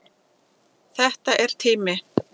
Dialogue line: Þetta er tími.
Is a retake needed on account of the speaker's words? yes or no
no